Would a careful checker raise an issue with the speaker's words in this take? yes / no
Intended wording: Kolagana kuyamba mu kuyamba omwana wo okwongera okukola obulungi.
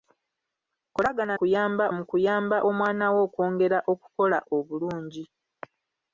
no